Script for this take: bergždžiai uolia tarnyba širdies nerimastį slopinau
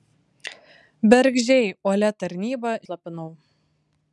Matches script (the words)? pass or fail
fail